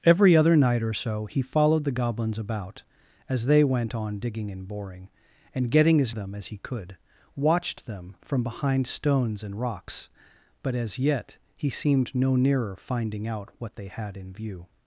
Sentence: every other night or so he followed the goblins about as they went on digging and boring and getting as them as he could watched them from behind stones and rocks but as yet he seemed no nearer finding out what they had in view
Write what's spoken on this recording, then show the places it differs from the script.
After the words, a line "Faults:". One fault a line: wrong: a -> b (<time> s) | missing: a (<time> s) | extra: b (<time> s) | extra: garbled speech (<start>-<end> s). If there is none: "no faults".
every other night or so he followed the goblins about as they went on digging and boring and getting as them as he could watched them from behind stones and rocks but as yet he seemed no nearer finding out what they had in view
Faults:
no faults